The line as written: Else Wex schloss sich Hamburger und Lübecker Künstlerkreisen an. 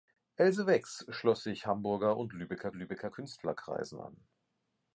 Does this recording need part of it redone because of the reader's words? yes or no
yes